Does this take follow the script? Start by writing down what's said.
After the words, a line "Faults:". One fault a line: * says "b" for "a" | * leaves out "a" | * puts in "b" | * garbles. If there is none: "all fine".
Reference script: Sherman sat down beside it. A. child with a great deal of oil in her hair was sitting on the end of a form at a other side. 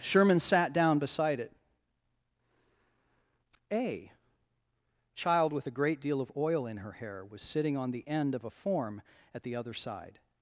Sherman sat down beside it. A. child with a great deal of oil in her hair was sitting on the end of a form at the other side.
Faults:
* says "the" for "a"